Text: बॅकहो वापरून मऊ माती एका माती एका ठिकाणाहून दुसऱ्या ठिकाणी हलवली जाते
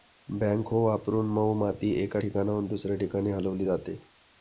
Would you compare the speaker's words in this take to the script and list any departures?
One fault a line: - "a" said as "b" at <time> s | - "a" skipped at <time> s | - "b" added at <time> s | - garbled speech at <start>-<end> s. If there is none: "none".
- "माती एका" skipped at 2.2 s